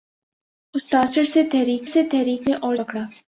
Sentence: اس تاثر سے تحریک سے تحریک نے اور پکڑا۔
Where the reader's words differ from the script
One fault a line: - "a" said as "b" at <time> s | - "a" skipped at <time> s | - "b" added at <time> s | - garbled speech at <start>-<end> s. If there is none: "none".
none